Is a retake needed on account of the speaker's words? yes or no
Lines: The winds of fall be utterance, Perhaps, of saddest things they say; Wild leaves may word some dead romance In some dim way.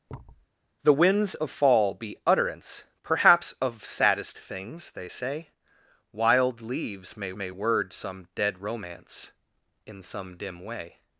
yes